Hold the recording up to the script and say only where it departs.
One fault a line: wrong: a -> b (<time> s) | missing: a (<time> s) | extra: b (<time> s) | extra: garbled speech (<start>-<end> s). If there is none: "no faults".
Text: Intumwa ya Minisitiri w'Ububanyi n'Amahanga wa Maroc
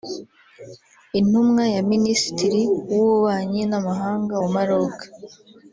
no faults